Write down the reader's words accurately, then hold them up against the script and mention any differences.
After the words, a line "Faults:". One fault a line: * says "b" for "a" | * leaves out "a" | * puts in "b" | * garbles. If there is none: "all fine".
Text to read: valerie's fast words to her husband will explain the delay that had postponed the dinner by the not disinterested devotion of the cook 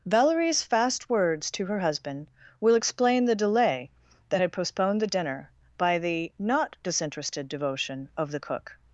valerie's fast words to her husband will explain the delay that had postponed the dinner by the not disinterested devotion of the cook
Faults:
all fine